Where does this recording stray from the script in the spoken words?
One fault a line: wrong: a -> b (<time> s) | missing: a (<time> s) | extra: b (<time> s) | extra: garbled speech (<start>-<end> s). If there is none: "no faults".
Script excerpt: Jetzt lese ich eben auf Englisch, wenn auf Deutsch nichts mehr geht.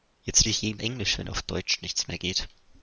missing: lese (0.5 s)
missing: auf (0.8 s)